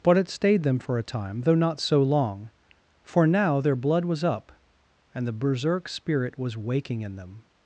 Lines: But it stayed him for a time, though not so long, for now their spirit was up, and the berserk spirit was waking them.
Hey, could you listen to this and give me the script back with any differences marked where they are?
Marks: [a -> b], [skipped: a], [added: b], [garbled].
But it stayed [him -> them] for a time, though not so long, for now their [spirit -> blood] was up, and the berserk spirit was waking [added: in] them.